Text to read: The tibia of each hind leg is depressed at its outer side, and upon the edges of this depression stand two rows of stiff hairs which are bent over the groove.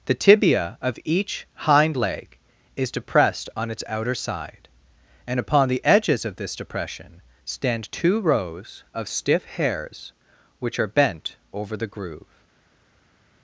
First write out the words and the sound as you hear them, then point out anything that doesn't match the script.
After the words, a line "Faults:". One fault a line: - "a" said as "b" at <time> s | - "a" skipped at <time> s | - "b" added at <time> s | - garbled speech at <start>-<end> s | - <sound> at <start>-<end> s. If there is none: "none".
The tibia of each hind leg is depressed on its outer side, and upon the edges of this depression stand two rows of stiff hairs which are bent over the groove.
Faults:
- "at" said as "on" at 3.5 s